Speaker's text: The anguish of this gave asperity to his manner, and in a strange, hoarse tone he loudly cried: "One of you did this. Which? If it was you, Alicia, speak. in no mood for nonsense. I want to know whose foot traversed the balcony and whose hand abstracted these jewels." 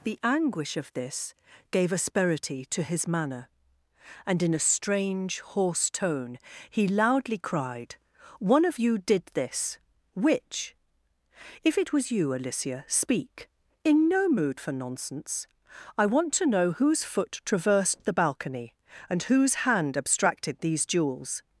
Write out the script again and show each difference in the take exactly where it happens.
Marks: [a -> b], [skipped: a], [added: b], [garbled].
The anguish of this gave asperity to his manner, and in a strange, hoarse tone he loudly cried: "One of you did this. Which? If it was you, Alicia, speak. in no mood for nonsense. I want to know whose foot traversed the balcony and whose hand abstracted these jewels."